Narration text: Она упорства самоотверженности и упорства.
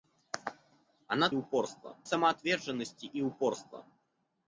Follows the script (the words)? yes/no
yes